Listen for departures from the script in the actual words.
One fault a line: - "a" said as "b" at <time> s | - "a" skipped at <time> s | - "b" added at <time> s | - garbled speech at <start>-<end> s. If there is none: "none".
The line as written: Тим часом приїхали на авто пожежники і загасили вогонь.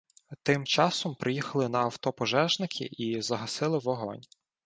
none